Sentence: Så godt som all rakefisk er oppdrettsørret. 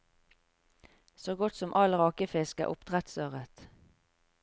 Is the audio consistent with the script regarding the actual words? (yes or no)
yes